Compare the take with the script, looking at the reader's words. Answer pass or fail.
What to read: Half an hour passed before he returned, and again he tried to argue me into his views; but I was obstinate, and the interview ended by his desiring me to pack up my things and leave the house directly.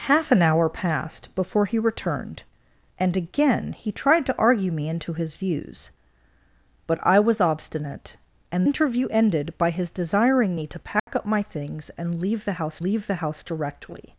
fail